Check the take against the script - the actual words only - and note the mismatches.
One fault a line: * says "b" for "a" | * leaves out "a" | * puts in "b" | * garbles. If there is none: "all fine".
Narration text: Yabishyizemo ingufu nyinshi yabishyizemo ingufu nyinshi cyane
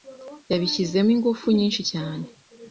* leaves out "yabishyizemo ingufu nyinshi"